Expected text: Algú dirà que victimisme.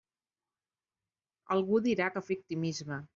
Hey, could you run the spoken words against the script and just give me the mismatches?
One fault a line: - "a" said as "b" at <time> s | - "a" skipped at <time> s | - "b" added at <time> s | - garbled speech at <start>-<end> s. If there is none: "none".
none